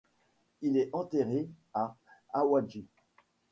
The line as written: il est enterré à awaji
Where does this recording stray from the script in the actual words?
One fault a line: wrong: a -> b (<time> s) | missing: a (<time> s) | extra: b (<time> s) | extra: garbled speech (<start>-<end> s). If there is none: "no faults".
no faults